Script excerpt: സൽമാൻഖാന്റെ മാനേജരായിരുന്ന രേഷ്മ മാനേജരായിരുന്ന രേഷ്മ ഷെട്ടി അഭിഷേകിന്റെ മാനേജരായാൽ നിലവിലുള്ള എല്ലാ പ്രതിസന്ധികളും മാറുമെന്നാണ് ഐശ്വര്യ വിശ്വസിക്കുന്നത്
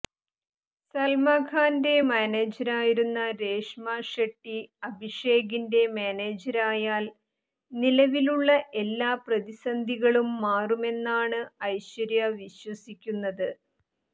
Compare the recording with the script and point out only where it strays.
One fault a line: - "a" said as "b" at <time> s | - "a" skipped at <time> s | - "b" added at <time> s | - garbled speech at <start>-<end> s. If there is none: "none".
- "മാനേജരായിരുന്ന രേഷ്മ" skipped at 3.9 s